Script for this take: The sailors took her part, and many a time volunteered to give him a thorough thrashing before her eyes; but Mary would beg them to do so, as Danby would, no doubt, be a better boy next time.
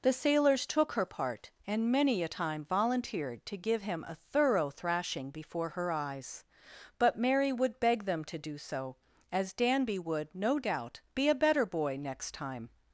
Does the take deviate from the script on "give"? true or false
false